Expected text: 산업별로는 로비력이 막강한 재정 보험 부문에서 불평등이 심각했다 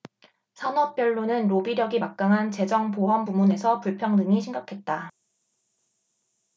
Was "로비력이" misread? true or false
false